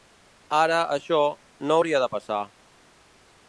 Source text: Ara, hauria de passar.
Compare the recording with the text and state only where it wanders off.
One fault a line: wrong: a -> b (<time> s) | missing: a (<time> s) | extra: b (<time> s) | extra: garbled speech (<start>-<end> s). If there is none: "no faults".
extra: això no (0.9 s)